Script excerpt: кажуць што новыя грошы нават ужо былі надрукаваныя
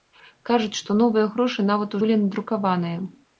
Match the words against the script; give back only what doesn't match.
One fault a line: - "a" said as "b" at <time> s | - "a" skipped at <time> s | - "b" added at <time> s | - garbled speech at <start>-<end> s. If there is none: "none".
- "ужо" skipped at 2.0 s